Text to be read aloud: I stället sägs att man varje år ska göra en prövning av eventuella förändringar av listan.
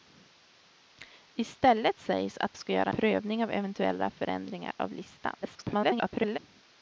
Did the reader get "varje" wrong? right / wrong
wrong